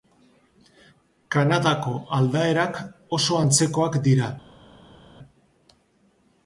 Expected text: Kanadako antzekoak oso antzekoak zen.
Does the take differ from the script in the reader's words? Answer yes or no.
yes